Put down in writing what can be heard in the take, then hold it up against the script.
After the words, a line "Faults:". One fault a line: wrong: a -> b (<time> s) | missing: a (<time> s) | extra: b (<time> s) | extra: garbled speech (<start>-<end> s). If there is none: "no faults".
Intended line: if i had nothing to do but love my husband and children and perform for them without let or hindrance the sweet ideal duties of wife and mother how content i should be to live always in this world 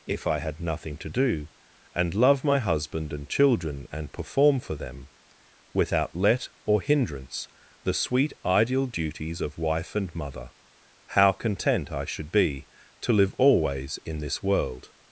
if i had nothing to do and love my husband and children and perform for them without let or hindrance the sweet ideal duties of wife and mother how content i should be to live always in this world
Faults:
wrong: but -> and (1.9 s)